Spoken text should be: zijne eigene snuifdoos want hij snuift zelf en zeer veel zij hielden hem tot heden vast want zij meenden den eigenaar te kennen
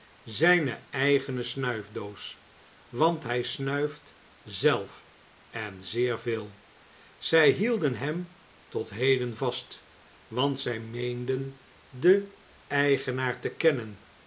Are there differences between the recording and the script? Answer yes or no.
no